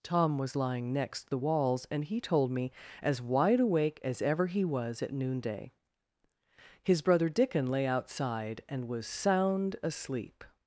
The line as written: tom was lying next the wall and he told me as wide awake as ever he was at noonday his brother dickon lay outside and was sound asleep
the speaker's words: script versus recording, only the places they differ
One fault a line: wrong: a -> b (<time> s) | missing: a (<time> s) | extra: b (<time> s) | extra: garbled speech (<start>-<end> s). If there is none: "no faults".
wrong: wall -> walls (1.4 s)